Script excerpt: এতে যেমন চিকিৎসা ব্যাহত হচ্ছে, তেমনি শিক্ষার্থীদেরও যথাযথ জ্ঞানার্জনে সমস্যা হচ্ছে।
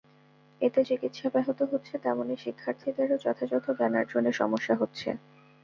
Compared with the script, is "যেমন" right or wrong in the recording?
wrong